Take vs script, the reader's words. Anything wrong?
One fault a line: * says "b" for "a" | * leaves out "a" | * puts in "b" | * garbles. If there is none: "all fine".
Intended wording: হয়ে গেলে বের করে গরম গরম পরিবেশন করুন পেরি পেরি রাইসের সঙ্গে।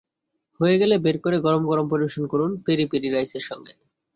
all fine